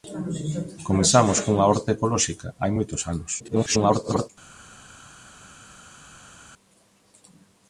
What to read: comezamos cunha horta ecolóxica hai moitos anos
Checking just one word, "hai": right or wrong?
right